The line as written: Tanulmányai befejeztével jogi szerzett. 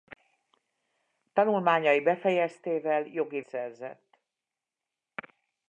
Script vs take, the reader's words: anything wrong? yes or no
no